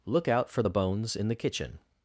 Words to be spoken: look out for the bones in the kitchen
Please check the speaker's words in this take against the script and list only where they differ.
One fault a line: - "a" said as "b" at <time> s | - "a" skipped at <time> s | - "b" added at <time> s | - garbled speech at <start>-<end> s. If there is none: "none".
none